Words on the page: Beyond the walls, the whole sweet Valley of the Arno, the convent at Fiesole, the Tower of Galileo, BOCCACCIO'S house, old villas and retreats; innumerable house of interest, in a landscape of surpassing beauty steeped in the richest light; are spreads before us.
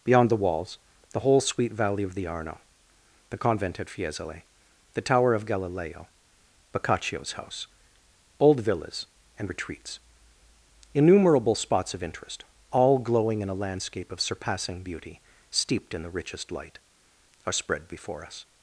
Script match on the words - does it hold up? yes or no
no